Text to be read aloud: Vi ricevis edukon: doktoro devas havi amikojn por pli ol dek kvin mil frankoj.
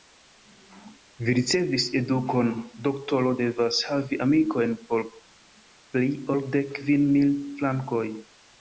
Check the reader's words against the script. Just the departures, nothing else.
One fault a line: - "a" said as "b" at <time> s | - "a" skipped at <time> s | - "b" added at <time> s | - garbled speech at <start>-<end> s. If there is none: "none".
none